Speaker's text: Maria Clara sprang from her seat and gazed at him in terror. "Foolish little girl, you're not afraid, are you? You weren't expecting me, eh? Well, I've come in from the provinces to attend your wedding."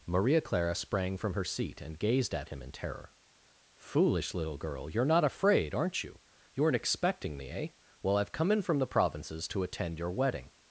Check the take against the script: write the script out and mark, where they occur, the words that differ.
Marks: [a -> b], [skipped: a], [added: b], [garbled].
Maria Clara sprang from her seat and gazed at him in terror. "Foolish little girl, you're not afraid, [are -> aren't] you? You weren't expecting me, eh? Well, I've come in from the provinces to attend your wedding."